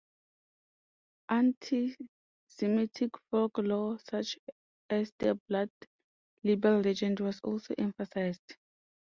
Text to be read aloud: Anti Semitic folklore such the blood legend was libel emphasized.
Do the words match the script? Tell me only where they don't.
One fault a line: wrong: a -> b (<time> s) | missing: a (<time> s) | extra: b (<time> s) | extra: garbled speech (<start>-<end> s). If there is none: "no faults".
extra: as (4.9 s)
extra: libel (6.4 s)
wrong: libel -> also (7.4 s)